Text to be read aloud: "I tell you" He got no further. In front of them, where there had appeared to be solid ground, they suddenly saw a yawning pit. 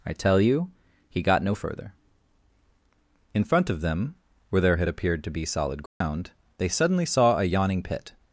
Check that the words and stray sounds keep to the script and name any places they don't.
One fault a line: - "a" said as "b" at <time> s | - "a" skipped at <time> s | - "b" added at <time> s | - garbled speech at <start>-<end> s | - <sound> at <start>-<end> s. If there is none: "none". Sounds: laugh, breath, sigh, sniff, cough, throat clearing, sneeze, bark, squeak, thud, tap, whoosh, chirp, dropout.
- dropout at 5.9-6.0 s